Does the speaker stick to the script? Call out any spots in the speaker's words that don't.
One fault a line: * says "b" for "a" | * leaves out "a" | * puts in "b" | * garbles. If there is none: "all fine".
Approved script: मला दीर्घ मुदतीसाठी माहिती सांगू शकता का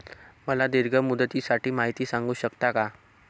all fine